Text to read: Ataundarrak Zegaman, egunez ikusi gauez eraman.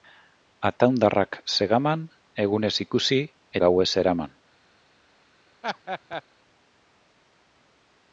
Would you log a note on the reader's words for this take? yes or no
no